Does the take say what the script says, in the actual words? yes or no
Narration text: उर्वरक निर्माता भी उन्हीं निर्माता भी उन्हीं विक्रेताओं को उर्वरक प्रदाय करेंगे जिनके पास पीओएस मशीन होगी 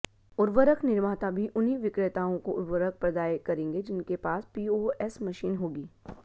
no